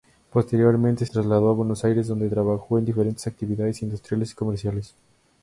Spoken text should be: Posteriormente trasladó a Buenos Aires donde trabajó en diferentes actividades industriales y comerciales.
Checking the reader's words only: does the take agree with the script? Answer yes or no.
yes